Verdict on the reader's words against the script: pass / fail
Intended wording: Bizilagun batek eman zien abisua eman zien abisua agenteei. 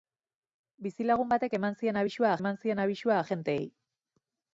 pass